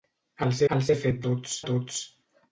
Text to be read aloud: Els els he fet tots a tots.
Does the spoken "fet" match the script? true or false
true